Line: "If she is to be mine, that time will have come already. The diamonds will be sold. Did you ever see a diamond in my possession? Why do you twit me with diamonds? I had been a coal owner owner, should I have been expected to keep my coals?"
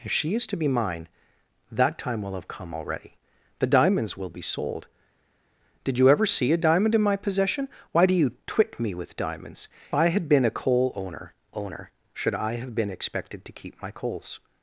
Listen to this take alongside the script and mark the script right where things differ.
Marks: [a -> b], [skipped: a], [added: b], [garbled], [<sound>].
"If she is to be mine, that time will have come already. The diamonds will be sold. Did you ever see a diamond in my possession? Why do you twit me with diamonds? I had been a coal owner owner, should I have been expected to keep my coals?"